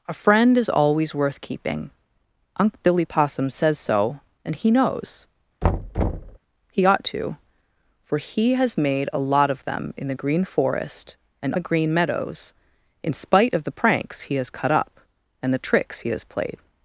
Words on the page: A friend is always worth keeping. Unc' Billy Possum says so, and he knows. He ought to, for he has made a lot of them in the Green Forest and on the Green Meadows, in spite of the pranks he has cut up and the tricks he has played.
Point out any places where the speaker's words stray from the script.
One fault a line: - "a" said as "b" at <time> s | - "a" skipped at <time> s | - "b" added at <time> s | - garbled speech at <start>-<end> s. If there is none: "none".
- "on" skipped at 11.5 s